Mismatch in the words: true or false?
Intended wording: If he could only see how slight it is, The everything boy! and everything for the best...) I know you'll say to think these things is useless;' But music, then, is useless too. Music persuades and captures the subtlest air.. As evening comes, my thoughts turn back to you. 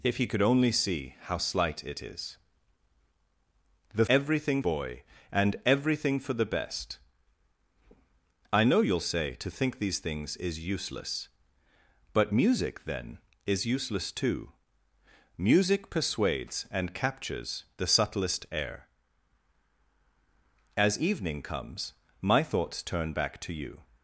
false